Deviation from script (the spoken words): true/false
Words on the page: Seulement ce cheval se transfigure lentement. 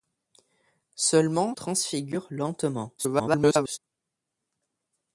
true